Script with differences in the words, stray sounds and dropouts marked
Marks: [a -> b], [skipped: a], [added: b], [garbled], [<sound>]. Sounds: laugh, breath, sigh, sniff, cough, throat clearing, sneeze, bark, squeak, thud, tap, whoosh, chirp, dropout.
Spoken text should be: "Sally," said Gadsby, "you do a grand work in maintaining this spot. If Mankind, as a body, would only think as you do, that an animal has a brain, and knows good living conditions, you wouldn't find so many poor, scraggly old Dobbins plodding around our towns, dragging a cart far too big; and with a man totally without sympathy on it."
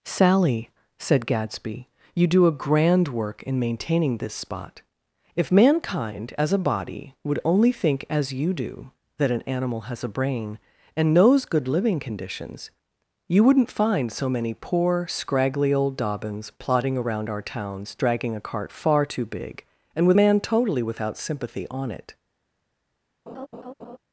"Sally," said Gadsby, "you do a grand work in maintaining this spot. If Mankind, as a body, would only think as you do, that an animal has a brain, and knows good living conditions, you wouldn't find so many poor, scraggly old Dobbins plodding around our towns, dragging a cart far too big; and with [skipped: a] man totally without sympathy on it." [laugh]